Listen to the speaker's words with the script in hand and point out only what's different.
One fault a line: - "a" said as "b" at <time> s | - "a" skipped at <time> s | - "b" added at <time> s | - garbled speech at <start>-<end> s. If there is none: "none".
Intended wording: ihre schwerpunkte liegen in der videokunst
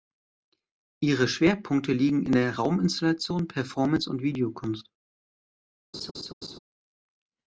- "rauminstallation performance und" added at 2.6 s